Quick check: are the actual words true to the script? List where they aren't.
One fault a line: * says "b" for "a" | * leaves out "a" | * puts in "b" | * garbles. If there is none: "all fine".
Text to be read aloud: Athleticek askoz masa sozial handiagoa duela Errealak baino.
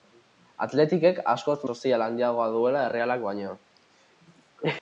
* leaves out "masa"